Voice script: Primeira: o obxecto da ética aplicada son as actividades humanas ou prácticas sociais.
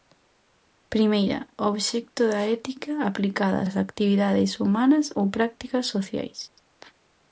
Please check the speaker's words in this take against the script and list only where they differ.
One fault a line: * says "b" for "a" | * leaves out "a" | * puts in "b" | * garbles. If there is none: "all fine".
* leaves out "son"